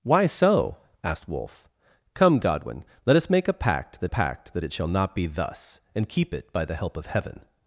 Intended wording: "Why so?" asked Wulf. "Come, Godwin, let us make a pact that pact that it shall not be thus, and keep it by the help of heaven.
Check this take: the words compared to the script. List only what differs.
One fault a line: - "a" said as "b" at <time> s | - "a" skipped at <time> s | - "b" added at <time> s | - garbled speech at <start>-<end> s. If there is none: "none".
none